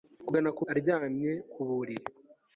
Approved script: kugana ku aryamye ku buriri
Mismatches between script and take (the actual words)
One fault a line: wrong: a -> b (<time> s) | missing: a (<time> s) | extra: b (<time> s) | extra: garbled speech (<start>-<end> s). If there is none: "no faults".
no faults